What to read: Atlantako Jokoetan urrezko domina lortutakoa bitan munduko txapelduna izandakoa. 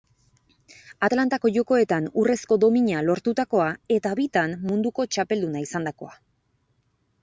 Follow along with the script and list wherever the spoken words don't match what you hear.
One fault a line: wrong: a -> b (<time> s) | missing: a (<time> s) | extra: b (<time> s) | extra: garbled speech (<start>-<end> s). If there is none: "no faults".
extra: eta (4.0 s)